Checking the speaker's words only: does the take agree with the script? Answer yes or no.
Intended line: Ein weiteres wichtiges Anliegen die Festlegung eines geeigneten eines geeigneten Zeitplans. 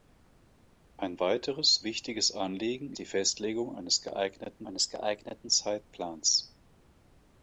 yes